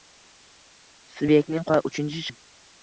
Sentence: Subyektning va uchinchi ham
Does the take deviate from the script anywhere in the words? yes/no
no